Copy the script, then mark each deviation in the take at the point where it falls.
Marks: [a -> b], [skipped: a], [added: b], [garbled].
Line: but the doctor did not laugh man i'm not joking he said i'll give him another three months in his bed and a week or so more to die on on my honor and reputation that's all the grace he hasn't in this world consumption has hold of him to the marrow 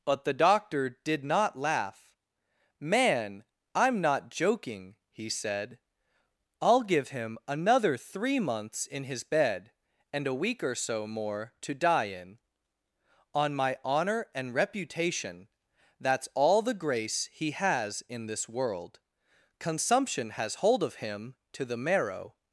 but the doctor did not laugh man i'm not joking he said i'll give him another three months in his bed and a week or so more to die [on -> in] on my honor and reputation that's all the grace he [hasn't -> has] in this world consumption has hold of him to the marrow